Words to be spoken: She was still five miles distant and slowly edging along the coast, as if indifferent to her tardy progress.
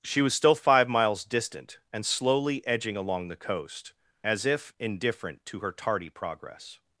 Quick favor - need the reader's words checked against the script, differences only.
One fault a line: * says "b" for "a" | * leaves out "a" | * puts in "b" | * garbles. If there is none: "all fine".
all fine